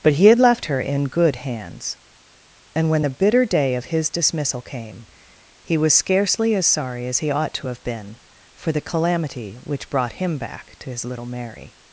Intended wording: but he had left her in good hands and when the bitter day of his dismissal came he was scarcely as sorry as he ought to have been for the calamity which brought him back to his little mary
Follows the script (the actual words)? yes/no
yes